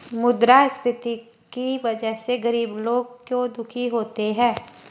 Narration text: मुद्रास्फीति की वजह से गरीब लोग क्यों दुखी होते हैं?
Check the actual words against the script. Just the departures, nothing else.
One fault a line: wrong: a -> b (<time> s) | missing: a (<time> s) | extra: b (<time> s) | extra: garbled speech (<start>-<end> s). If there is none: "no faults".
no faults